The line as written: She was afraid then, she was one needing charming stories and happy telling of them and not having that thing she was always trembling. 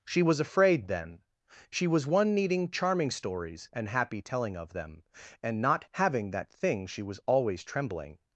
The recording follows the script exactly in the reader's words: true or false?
true